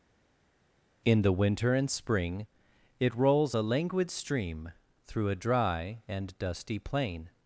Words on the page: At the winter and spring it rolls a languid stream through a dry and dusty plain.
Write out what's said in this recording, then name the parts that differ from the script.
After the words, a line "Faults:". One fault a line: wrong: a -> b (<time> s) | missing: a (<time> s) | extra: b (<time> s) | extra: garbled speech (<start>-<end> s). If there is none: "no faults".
In the winter and spring it rolls a languid stream through a dry and dusty plain.
Faults:
wrong: At -> In (1.0 s)